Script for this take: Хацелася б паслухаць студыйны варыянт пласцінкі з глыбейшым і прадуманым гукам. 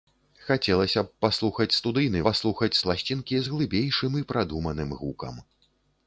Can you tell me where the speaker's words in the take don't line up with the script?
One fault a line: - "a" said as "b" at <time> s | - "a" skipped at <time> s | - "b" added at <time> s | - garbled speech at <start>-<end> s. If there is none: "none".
- "варыянт" said as "паслухаць" at 2.3 s